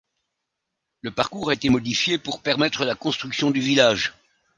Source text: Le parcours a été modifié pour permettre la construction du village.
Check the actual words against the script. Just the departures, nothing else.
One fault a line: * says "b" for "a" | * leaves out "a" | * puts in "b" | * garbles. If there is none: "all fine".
all fine